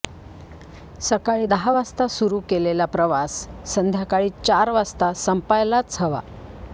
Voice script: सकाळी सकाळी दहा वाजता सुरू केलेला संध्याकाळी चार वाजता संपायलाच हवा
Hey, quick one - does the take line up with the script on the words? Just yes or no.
no